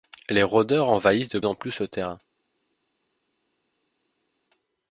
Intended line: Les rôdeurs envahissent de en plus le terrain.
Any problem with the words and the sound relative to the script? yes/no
no